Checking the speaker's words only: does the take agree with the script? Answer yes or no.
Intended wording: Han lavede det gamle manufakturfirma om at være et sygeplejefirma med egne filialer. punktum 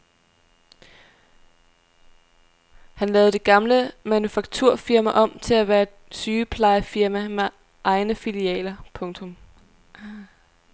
no